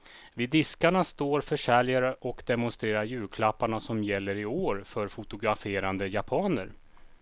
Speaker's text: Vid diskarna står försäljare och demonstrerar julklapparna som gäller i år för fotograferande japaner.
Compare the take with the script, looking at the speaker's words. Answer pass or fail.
pass